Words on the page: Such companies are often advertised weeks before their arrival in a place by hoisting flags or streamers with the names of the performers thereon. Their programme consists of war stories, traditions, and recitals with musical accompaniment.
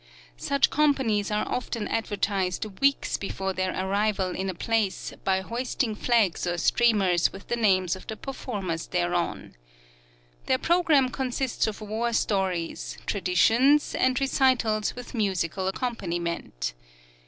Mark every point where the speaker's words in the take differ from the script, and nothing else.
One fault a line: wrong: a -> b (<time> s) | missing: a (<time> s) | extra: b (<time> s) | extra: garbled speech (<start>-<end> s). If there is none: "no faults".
no faults